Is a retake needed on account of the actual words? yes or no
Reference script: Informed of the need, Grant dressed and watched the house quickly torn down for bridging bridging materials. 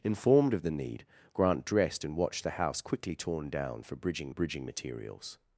no